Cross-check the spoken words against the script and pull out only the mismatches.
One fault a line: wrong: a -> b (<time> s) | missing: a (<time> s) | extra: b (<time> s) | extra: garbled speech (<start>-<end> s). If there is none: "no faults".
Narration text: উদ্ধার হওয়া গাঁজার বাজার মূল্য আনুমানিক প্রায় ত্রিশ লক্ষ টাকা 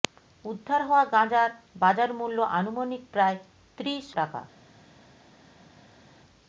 missing: লক্ষ (4.0 s)